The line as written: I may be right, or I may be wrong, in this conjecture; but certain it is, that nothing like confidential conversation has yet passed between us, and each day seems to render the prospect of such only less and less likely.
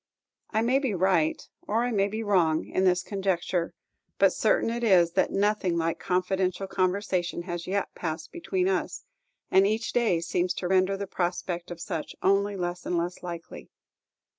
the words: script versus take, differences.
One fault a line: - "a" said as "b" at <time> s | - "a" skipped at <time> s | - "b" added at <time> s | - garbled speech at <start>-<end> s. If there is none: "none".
none